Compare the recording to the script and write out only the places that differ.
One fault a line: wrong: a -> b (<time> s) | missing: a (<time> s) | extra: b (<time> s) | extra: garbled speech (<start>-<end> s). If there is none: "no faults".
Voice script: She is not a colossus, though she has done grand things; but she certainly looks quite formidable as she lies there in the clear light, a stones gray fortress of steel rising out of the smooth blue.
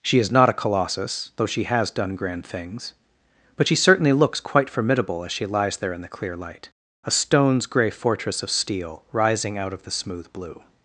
no faults